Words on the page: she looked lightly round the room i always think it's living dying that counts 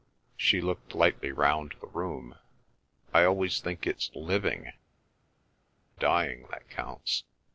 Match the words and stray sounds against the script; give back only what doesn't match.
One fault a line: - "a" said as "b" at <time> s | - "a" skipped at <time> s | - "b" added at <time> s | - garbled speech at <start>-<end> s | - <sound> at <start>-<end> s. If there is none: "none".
none